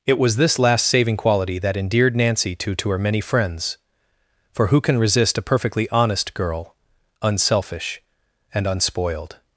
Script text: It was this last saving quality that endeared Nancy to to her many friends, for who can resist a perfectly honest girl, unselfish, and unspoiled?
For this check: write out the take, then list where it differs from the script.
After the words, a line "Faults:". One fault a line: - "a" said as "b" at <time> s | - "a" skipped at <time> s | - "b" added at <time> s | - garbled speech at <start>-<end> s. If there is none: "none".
It was this last saving quality that endeared Nancy to to her many friends, for who can resist a perfectly honest girl, unselfish, and unspoiled?
Faults:
none